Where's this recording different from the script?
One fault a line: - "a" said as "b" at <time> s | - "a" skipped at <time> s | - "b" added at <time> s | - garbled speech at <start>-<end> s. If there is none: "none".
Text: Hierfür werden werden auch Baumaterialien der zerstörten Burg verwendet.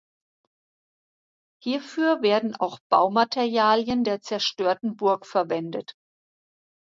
- "werden" skipped at 2.5 s